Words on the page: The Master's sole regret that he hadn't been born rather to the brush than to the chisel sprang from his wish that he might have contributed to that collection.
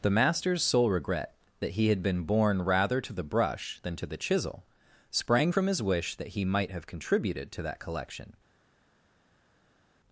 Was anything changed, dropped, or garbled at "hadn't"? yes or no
yes